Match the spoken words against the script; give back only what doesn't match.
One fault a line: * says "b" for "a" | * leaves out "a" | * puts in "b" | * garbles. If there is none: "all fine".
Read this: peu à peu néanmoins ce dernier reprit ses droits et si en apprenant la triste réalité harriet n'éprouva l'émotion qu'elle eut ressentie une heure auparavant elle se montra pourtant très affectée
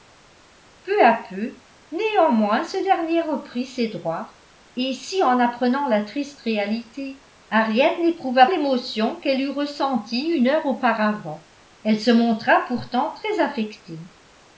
all fine